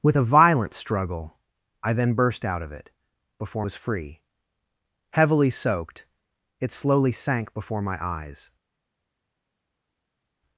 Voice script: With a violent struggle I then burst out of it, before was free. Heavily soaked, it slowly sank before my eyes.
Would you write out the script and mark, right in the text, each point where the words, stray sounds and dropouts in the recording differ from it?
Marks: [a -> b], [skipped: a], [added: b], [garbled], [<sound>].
With a violent struggle I then burst out of it, before was free. Heavily soaked, it slowly sank before my eyes.